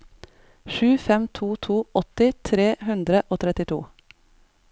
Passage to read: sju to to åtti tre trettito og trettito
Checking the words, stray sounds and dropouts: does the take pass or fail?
fail